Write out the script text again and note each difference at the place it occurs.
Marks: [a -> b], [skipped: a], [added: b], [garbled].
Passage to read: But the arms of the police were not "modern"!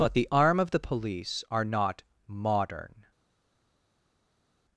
But the [arms -> arm] of the police [were -> are] not "modern"!